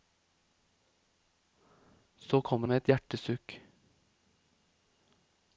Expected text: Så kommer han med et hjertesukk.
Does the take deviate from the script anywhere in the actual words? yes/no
yes